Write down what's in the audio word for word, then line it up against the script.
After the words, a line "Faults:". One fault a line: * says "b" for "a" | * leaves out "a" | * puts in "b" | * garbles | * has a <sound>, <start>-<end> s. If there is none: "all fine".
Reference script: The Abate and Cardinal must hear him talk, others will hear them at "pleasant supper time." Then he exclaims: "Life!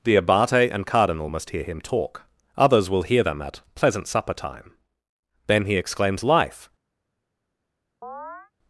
The Abate and Cardinal must hear him talk, others will hear them at "pleasant supper time." Then he exclaims: "Life!
Faults:
* has a chirp, 8.0-8.5 s